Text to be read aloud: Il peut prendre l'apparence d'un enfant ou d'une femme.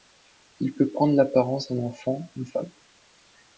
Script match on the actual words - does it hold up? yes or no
no